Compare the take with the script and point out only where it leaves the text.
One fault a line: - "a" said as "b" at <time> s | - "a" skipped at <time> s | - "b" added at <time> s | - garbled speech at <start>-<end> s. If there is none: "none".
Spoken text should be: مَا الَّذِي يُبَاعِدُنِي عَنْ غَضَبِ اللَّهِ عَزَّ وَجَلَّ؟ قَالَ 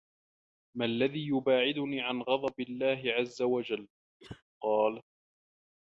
none